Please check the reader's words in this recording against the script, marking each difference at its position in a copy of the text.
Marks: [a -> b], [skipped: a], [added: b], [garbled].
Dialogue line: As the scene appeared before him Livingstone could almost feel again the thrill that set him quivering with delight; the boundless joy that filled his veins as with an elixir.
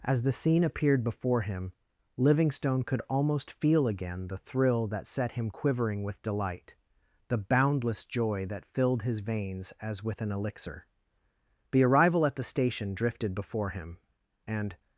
As the scene appeared before him Livingstone could almost feel again the thrill that set him quivering with delight; the boundless joy that filled his veins as with an elixir. [added: The arrival at the station drifted before him and]